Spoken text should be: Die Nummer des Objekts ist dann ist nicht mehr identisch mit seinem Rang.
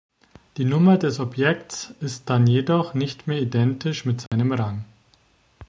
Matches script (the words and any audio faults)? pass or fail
fail